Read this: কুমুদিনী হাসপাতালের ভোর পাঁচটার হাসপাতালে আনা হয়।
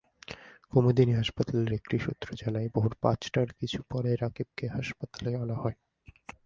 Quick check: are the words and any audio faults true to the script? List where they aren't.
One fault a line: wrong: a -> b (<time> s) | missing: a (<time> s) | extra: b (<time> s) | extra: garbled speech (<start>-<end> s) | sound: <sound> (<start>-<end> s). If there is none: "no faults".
extra: একটি সূত্র জানায় (1.7 s)
extra: কিছু পরে রাকিবকে (3.5 s)